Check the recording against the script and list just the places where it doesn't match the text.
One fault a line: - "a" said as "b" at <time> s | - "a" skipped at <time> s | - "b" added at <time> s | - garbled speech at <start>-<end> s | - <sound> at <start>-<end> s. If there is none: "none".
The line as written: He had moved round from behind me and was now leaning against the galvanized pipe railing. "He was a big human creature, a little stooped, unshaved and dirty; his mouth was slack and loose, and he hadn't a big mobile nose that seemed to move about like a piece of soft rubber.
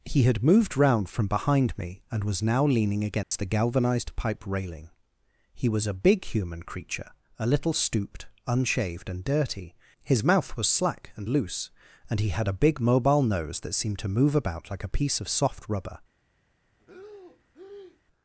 - dropout at 3.2-3.3 s
- "hadn't" said as "had" at 12.3 s
- breath at 16.8-18.0 s